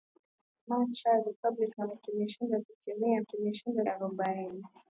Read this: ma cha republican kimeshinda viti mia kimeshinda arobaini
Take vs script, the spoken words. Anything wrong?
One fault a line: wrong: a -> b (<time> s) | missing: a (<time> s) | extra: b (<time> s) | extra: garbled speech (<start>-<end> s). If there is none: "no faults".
no faults